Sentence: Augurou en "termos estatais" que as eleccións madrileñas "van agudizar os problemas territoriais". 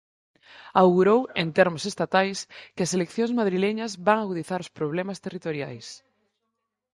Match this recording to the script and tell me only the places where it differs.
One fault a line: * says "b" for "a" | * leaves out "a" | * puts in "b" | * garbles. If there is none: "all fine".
all fine